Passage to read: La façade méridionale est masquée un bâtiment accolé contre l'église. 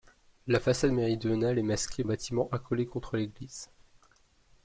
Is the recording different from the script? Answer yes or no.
no